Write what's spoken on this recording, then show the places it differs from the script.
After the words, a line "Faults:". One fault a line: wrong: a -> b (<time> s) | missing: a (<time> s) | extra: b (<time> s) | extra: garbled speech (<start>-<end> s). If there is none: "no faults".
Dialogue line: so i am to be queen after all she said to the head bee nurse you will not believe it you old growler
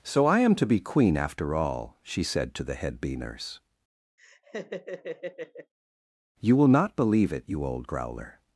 so i am to be queen after all she said to the head bee nurse you will not believe it you old growler
Faults:
no faults